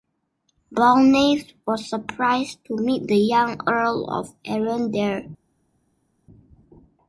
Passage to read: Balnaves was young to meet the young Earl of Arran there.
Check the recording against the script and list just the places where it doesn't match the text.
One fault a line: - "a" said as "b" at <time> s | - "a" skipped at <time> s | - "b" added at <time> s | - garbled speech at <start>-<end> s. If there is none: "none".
- "young" said as "surprised" at 1.9 s